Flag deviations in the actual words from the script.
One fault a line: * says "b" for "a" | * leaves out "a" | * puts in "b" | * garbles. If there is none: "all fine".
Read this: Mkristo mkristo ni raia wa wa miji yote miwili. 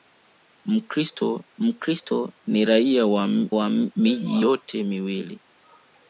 all fine